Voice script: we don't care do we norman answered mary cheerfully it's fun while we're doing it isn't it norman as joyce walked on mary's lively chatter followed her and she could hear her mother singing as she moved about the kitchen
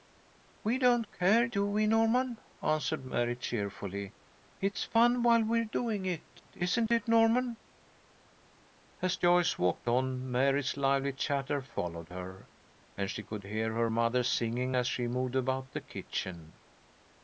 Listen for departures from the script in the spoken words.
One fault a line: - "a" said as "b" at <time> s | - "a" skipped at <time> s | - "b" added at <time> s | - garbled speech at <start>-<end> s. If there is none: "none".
none